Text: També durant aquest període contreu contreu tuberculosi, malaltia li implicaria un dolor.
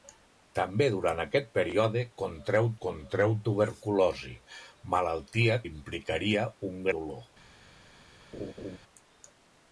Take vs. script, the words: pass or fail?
pass